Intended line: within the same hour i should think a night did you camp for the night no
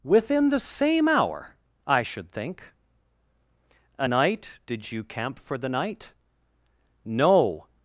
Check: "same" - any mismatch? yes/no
no